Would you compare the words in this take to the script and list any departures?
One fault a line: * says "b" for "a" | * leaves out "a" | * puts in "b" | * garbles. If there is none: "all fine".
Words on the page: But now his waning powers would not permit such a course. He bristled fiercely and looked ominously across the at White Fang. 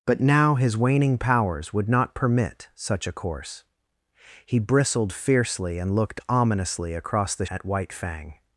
all fine